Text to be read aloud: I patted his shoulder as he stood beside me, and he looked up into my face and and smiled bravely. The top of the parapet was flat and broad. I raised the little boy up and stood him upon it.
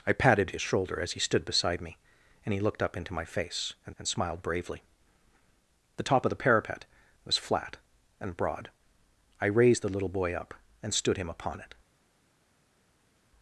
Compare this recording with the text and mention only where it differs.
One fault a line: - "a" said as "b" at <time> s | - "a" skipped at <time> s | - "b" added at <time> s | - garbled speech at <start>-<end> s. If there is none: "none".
none